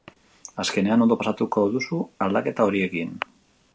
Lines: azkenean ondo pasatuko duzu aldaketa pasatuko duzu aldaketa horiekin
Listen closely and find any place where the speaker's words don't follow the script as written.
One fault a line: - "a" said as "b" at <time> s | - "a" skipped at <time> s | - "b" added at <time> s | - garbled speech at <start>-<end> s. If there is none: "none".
- "pasatuko duzu aldaketa" skipped at 2.7 s